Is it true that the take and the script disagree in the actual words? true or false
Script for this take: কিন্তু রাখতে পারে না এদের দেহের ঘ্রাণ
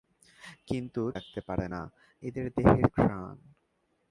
false